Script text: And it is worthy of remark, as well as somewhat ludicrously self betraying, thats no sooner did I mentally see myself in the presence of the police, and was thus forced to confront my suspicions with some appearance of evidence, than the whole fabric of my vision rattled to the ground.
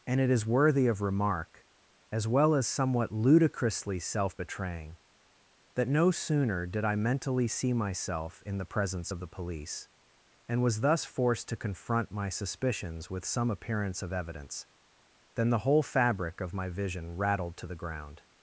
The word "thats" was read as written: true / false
false